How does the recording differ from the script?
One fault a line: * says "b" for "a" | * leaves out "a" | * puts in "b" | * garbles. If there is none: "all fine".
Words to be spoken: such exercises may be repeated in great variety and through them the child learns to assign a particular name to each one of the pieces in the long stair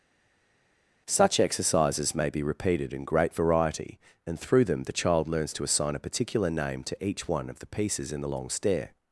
all fine